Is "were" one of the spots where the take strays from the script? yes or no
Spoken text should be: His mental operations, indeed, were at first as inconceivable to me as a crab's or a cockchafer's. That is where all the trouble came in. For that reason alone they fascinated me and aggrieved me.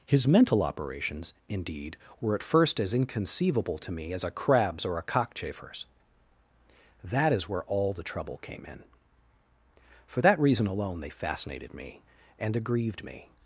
no